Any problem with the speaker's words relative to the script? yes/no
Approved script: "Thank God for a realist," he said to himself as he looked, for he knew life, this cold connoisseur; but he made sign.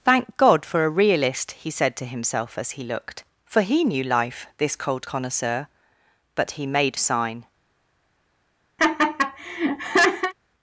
no